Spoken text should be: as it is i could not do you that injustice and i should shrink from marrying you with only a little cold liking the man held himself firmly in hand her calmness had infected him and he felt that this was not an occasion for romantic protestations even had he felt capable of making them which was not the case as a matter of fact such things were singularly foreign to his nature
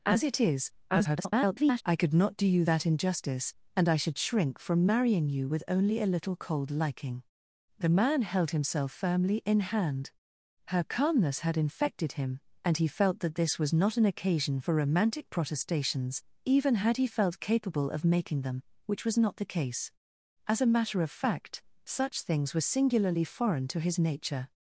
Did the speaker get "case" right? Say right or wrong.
right